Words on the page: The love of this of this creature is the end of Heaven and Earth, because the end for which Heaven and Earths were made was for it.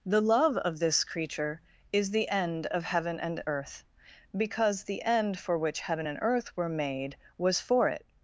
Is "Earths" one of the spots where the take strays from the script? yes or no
yes